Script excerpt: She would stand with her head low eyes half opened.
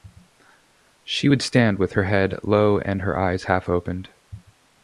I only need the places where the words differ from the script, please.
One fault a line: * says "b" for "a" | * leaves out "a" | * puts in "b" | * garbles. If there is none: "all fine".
* puts in "and her"